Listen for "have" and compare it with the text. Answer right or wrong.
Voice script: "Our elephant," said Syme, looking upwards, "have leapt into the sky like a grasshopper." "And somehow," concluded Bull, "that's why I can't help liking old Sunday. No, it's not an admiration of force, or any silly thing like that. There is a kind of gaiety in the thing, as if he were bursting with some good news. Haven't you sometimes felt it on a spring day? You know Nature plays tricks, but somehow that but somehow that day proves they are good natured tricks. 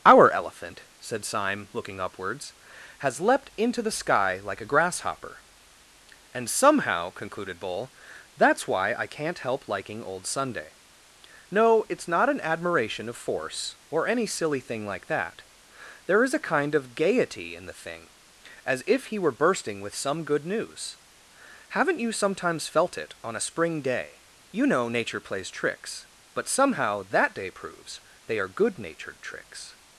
wrong